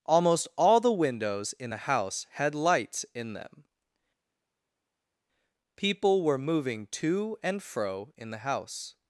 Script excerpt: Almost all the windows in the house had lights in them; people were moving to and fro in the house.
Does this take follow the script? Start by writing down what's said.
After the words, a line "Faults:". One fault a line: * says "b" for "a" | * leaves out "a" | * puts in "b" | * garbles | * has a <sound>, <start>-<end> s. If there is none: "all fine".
Almost all the windows in the house had lights in them; people were moving to and fro in the house.
Faults:
all fine